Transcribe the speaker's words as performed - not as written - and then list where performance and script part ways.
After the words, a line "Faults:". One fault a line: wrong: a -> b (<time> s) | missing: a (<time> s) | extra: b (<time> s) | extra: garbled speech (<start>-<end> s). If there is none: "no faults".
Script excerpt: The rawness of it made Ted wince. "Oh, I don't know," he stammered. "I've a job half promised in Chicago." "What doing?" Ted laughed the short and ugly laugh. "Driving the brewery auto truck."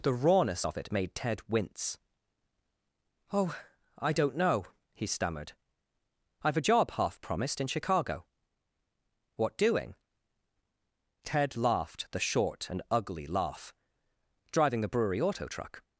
The rawness of it made Ted wince. "Oh, I don't know," he stammered. "I've a job half promised in Chicago." "What doing?" Ted laughed the short and ugly laugh. "Driving the brewery auto truck."
Faults:
no faults